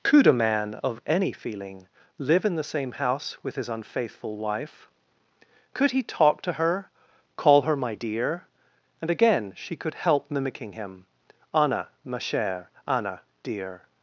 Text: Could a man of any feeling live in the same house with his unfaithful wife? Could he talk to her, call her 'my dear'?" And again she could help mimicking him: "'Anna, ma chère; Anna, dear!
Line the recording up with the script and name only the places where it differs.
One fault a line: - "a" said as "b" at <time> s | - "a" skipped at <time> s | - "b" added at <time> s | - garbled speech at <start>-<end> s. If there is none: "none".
none